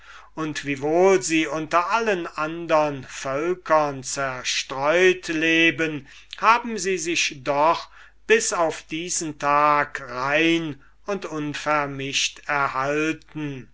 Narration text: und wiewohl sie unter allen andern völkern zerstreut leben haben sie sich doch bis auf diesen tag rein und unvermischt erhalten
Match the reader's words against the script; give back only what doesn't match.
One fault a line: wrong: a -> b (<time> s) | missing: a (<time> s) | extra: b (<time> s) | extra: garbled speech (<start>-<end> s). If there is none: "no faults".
no faults